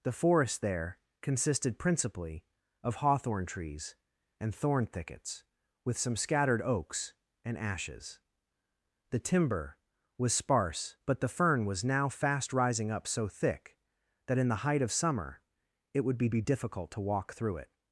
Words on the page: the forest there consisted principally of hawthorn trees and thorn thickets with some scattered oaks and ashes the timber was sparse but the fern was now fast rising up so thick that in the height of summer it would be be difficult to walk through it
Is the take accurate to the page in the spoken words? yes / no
yes